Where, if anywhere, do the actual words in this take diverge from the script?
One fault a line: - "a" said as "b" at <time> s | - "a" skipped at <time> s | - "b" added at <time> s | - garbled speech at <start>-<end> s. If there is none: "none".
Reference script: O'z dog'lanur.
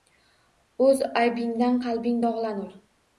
- "aybingdan qalbing" added at 1.2 s